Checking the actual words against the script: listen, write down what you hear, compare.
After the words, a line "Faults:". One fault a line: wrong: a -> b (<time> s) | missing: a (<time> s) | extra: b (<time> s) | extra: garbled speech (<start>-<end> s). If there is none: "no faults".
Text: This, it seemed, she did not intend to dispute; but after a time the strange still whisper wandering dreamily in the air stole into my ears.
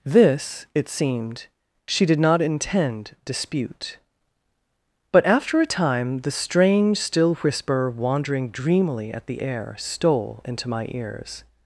This, it seemed, she did not intend dispute; but after a time the strange still whisper wandering dreamily at the air stole into my ears.
Faults:
missing: to (3.1 s)
wrong: in -> at (9.1 s)